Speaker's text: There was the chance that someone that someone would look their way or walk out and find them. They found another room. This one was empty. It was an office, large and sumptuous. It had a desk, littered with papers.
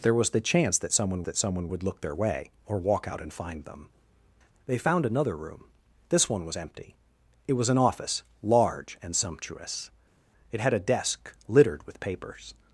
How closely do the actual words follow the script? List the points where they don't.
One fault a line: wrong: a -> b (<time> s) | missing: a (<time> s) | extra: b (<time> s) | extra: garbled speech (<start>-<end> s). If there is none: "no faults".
no faults